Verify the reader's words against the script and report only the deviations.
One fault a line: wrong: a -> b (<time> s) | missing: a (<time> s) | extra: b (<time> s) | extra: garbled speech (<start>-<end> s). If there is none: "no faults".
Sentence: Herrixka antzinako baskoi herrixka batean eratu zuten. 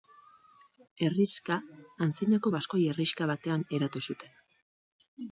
no faults